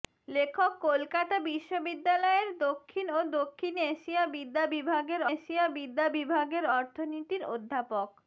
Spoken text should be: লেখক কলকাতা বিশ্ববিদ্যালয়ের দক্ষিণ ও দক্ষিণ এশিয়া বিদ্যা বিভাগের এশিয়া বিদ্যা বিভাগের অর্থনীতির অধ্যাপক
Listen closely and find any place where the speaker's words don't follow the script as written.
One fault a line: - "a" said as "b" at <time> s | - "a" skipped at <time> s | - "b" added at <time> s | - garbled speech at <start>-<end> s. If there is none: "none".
none